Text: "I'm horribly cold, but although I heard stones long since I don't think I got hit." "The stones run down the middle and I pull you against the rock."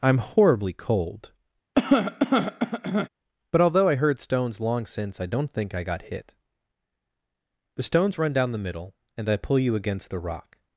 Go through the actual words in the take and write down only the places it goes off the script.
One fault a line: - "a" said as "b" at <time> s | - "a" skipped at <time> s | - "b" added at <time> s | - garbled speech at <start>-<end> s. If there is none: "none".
none